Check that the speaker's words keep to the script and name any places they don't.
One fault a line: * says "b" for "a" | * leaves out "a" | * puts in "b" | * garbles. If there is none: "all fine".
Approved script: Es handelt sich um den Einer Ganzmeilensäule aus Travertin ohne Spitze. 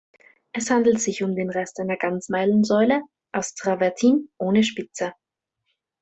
* puts in "Rest"